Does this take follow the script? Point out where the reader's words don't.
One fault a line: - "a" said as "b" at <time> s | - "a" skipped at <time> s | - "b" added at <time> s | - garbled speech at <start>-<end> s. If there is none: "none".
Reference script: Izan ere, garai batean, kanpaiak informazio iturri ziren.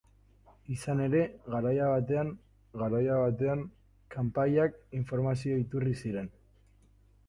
- "garai batean" added at 2.8 s